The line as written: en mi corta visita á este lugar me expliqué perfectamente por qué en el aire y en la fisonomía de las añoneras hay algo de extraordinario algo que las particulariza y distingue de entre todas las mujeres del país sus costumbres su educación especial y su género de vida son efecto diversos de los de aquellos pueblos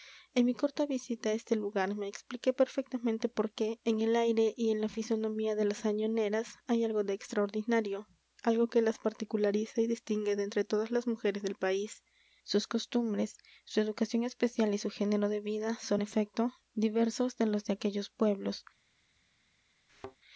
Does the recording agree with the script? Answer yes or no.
yes